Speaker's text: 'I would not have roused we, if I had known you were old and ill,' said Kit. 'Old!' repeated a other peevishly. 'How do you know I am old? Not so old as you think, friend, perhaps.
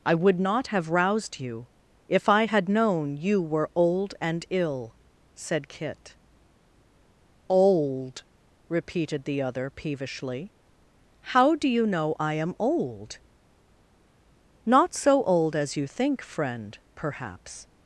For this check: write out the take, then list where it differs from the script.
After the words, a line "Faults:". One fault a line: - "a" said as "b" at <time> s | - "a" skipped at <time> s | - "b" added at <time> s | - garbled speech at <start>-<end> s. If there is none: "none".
'I would not have roused you, if I had known you were old and ill,' said Kit. 'Old!' repeated the other peevishly. 'How do you know I am old? Not so old as you think, friend, perhaps.
Faults:
- "we" said as "you" at 1.4 s
- "a" said as "the" at 9.3 s